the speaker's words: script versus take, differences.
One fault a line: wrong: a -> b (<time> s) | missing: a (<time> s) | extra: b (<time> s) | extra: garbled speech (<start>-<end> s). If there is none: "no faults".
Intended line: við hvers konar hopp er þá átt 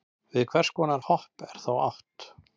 no faults